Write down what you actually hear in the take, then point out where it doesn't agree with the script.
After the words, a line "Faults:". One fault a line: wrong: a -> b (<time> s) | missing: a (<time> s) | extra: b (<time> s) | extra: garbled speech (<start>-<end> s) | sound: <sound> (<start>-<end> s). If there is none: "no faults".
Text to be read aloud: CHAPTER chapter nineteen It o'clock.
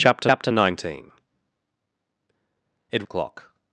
CHAPTER chapter nineteen It o'clock.
Faults:
no faults